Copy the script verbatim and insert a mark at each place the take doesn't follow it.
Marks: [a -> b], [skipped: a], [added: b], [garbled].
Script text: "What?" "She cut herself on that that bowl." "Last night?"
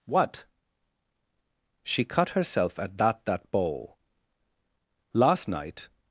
"What?" "She cut herself [on -> at] that that bowl." "Last night?"